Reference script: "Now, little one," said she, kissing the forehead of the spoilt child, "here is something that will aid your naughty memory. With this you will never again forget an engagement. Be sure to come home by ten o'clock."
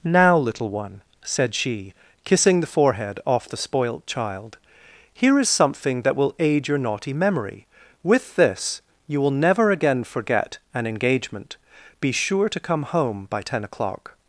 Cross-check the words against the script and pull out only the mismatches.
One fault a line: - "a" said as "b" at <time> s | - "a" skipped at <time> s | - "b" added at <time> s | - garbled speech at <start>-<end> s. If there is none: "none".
- "of" said as "off" at 3.2 s